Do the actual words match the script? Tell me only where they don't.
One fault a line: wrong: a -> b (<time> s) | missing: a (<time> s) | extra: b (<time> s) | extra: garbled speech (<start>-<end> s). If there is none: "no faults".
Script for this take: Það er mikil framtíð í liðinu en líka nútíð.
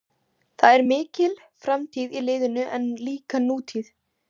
no faults